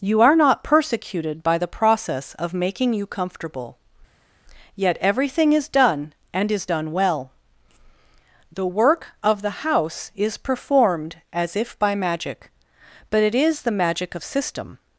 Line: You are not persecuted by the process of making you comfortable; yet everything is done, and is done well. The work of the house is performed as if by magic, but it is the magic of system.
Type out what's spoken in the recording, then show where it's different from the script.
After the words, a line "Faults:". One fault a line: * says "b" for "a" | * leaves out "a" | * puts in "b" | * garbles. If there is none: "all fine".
You are not persecuted by the process of making you comfortable; yet everything is done, and is done well. The work of the house is performed as if by magic, but it is the magic of system.
Faults:
all fine